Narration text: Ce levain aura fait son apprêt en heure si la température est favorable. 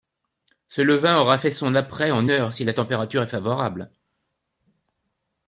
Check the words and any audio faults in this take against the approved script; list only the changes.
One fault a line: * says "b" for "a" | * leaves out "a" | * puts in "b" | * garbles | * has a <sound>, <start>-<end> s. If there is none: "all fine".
all fine